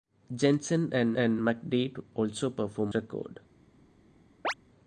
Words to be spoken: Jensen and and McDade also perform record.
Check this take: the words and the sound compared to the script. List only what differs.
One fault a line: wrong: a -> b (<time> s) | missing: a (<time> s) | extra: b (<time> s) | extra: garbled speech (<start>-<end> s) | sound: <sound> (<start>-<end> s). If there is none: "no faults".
sound: chirp (4.4-4.5 s)